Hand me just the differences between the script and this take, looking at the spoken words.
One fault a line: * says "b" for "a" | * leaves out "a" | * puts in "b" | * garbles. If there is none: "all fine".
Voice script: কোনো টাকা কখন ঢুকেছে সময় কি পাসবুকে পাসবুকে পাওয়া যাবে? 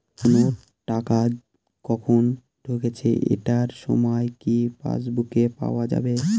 * puts in "এটার"
* leaves out "পাসবুকে"